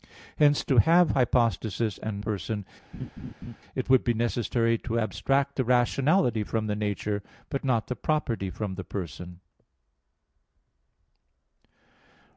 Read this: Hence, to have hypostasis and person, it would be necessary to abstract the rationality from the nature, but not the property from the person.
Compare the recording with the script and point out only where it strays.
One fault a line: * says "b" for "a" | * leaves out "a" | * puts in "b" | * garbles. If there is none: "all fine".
all fine